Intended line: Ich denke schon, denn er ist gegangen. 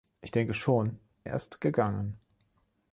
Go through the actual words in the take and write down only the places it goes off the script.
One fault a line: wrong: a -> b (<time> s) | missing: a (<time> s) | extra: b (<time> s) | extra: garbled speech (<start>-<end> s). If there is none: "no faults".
missing: denn (1.0 s)